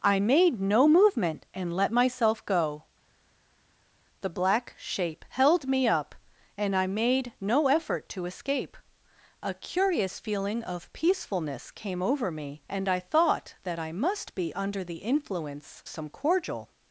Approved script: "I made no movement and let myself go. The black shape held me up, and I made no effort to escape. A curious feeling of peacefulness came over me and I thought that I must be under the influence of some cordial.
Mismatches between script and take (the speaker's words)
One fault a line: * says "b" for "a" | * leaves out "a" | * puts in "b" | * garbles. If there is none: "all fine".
* leaves out "of"